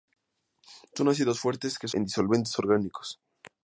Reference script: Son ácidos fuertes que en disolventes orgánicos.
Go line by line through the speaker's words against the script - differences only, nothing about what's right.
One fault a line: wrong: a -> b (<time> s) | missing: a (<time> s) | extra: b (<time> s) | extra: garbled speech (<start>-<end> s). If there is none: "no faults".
no faults